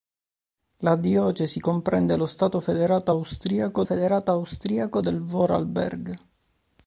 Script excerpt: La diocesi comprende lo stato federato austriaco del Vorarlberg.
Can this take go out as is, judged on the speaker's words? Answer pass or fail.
fail